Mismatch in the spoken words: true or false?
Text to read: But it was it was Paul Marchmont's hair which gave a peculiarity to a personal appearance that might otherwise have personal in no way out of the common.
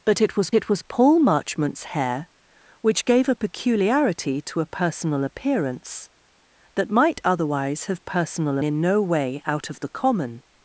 false